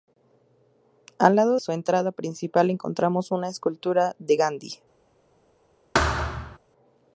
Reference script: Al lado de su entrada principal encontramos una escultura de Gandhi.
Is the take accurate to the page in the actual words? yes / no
no